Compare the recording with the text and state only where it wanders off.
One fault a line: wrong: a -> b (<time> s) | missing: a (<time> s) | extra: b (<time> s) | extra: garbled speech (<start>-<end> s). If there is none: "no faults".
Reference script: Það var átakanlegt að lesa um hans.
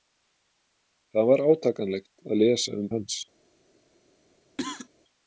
no faults